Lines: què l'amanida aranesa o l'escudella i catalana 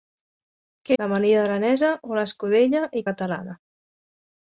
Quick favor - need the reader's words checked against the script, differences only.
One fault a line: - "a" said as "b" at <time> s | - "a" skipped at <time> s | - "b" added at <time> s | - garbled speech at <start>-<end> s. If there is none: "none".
none